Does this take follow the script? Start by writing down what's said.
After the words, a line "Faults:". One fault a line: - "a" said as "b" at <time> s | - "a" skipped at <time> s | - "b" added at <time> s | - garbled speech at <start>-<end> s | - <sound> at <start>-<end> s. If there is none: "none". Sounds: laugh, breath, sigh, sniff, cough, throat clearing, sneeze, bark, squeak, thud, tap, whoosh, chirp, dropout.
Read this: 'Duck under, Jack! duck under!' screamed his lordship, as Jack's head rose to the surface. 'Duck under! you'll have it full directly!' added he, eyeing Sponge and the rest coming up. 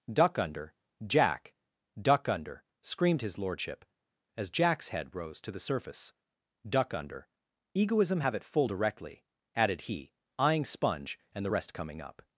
'Duck under, Jack! duck under!' screamed his lordship, as Jack's head rose to the surface. 'Duck under! egoism have it full directly!' added he, eyeing Sponge and the rest coming up.
Faults:
- "you'll" said as "egoism" at 7.7 s